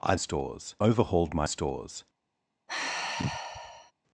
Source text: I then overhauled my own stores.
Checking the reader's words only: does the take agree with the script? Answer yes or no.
no